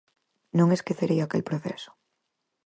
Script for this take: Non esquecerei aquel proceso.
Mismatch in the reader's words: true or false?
false